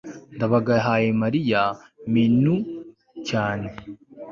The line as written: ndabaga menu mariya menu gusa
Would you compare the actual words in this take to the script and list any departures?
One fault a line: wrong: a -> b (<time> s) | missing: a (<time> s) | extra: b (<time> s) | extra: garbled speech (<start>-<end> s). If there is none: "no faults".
wrong: menu -> yahaye (0.8 s)
wrong: gusa -> cyane (3.3 s)